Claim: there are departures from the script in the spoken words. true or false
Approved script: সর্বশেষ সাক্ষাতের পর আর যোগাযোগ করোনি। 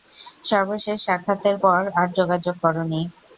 false